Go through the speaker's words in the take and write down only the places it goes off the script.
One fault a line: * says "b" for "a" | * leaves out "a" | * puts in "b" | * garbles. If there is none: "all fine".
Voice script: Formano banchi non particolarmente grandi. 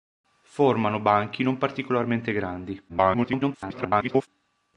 * garbles